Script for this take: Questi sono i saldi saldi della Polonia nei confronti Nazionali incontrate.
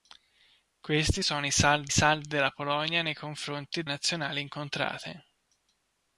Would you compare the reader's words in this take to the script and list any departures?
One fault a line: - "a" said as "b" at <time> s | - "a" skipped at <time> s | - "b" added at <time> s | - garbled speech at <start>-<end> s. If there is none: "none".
none